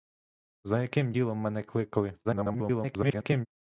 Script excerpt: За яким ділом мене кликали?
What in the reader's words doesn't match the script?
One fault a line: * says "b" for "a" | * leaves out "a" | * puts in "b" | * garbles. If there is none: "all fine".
* garbles